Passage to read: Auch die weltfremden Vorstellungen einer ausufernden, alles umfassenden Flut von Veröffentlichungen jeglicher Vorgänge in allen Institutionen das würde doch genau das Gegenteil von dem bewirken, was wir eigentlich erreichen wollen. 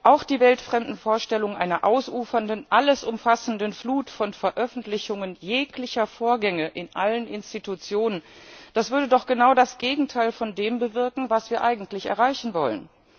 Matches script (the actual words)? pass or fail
pass